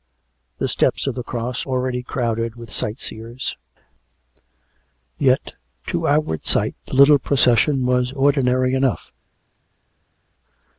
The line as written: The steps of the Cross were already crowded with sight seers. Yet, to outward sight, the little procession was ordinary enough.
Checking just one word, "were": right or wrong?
wrong